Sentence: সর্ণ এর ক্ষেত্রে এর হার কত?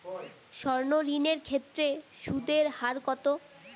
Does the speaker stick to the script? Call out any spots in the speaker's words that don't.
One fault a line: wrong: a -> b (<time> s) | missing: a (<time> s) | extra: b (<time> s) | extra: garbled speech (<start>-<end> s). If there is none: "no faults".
extra: ঋণ (1.1 s)
extra: সুদ (2.2 s)